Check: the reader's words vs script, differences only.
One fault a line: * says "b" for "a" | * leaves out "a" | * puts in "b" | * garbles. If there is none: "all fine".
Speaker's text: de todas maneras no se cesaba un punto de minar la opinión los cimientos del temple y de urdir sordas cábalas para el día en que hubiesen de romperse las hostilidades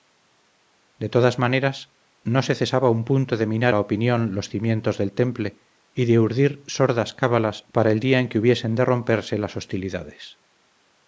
all fine